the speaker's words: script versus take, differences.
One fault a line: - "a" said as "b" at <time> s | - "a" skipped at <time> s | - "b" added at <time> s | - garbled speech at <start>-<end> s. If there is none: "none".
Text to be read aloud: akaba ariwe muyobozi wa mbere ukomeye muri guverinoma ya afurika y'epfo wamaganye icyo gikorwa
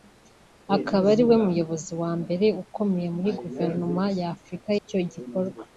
- "y'epfo wamaganye" skipped at 4.7 s